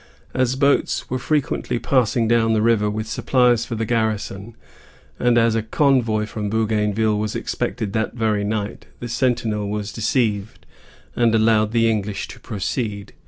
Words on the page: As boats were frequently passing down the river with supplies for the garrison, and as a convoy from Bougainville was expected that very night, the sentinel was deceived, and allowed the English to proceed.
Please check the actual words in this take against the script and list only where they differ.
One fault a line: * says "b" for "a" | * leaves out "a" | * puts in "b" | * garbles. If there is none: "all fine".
all fine